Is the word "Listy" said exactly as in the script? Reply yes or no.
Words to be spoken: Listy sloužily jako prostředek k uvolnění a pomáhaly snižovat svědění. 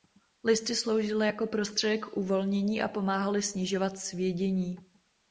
yes